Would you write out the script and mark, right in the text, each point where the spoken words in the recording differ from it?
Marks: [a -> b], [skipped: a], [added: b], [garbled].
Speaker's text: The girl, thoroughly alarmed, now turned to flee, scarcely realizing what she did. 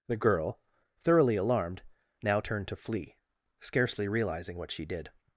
The girl, thoroughly alarmed, now turned to flee, scarcely realizing what she did.